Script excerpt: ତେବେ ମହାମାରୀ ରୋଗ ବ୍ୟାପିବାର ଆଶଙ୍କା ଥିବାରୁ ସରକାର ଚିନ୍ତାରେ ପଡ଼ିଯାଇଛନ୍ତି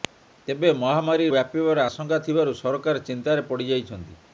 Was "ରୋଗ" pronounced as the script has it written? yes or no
no